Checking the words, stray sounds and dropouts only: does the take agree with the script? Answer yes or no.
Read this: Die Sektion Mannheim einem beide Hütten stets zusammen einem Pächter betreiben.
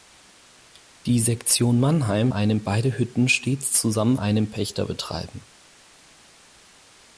yes